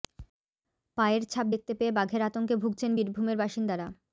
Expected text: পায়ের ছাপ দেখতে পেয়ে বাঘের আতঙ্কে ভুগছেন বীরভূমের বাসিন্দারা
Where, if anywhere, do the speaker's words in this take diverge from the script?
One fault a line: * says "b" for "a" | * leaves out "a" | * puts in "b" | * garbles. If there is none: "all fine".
all fine